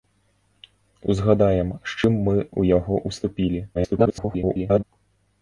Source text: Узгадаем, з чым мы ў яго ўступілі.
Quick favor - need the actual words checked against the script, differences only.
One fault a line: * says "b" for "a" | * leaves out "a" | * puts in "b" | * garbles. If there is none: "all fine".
* garbles